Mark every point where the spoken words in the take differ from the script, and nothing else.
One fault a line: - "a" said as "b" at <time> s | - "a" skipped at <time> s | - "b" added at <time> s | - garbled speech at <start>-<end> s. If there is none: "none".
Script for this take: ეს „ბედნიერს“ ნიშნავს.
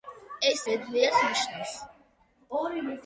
none